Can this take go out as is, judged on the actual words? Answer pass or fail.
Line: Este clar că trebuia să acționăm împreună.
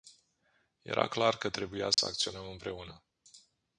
fail